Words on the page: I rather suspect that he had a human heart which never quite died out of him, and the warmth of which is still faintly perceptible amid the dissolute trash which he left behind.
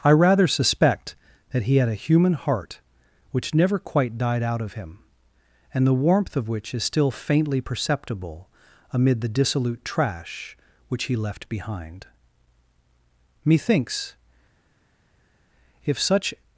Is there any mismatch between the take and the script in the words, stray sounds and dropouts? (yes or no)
yes